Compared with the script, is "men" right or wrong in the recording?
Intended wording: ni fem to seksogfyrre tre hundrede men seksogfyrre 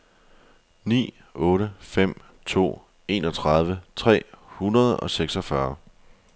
wrong